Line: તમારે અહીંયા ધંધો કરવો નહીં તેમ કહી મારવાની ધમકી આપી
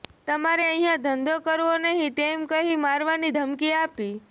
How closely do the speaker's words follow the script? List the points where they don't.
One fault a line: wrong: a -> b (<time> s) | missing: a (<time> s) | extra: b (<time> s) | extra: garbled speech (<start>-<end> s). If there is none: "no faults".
no faults